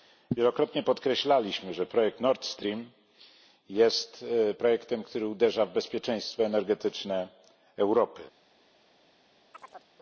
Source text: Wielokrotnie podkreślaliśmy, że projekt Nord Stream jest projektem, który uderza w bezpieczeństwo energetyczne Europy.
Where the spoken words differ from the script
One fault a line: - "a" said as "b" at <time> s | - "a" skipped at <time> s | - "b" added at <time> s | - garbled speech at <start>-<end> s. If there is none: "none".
none